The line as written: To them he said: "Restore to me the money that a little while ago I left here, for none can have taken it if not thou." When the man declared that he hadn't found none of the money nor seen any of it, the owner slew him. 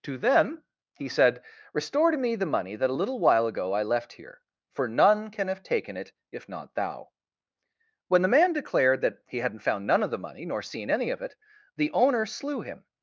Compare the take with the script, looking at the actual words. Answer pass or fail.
pass